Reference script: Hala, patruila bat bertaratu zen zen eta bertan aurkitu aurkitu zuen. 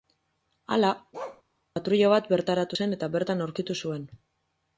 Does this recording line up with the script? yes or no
no